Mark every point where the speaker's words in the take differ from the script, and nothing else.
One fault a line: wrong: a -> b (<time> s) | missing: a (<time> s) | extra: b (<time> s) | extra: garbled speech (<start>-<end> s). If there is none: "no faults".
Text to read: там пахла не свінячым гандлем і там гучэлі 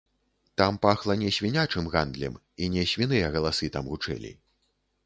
extra: не свіныя галасы (2.8 s)